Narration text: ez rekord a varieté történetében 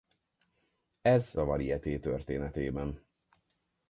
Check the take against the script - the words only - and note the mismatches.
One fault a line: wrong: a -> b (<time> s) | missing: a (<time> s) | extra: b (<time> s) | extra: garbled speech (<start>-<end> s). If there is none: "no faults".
missing: rekord (1.3 s)